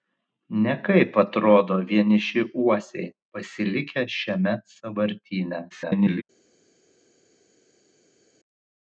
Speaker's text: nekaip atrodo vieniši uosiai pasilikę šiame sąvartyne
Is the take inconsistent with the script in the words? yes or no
yes